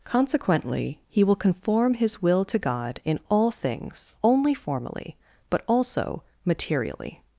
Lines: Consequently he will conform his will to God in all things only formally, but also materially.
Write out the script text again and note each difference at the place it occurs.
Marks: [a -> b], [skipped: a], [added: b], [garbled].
Consequently he will conform his will to God in all things only formally, but also materially.